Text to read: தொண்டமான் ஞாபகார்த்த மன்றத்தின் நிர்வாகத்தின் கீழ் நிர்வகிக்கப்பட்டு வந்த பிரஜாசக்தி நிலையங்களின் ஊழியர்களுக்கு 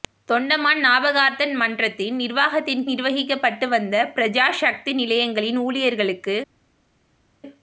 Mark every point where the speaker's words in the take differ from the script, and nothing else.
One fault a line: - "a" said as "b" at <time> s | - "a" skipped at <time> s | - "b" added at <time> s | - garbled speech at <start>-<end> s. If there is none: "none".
- "கீழ்" skipped at 2.8 s